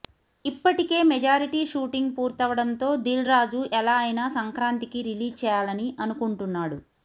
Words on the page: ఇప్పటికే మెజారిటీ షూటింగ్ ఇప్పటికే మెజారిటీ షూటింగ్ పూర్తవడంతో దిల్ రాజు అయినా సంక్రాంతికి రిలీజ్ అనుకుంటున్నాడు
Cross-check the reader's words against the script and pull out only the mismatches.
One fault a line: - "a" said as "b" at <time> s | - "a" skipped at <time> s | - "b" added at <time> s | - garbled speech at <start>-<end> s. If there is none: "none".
- "ఇప్పటికే మెజారిటీ షూటింగ్" skipped at 2.1 s
- "ఎలా" added at 3.7 s
- "చేయాలని" added at 5.4 s